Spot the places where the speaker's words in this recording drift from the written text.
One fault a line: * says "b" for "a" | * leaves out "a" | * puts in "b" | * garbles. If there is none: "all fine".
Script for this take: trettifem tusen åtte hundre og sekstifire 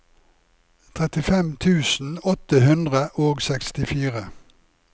all fine